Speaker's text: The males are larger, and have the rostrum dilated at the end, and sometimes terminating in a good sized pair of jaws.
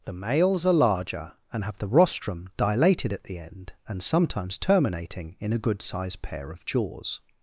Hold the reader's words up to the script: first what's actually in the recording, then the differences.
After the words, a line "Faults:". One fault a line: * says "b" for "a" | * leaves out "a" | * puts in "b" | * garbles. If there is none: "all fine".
The males are larger, and have the rostrum dilated at the end, and sometimes terminating in a good sized pair of jaws.
Faults:
all fine